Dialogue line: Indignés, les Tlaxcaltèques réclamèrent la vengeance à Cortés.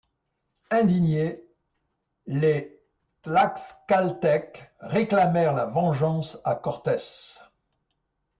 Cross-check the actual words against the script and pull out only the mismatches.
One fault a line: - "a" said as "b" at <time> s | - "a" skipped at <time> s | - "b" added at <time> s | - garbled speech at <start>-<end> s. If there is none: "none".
none